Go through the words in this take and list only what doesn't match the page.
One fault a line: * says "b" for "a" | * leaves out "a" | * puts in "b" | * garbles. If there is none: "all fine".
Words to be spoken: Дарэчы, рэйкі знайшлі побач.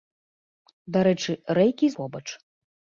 * leaves out "знайшлі"